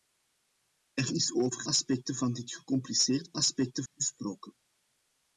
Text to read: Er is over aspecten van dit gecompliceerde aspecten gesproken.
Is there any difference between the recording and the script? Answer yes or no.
no